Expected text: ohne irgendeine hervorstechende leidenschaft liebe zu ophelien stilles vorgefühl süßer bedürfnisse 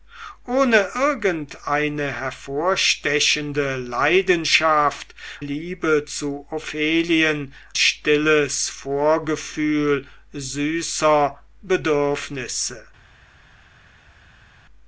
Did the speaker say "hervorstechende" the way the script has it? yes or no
yes